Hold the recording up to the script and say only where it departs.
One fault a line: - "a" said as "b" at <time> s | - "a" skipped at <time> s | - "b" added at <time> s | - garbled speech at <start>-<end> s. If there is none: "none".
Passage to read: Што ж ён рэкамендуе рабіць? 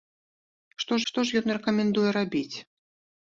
- "што" added at 1.1 s